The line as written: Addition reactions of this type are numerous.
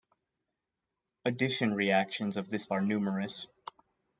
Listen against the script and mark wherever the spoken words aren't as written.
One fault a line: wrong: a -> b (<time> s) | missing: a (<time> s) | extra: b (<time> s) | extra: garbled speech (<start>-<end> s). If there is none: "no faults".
missing: type (2.7 s)